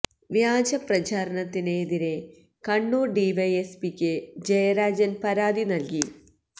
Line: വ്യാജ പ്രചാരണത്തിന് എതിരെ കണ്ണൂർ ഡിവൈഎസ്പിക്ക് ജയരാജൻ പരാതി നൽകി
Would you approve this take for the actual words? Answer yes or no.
yes